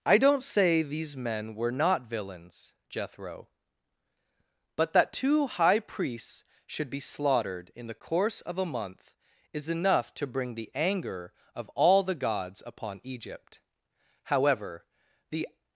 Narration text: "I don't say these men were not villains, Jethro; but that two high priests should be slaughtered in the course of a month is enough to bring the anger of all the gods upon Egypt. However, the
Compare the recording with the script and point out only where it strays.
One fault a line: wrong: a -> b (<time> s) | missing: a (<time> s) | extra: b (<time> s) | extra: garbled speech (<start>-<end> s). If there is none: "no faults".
no faults